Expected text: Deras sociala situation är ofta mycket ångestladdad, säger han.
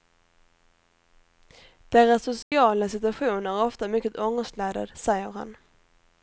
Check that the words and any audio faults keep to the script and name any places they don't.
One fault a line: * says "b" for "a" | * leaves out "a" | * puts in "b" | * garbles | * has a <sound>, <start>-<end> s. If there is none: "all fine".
* has a dropout, 2.4-2.5 s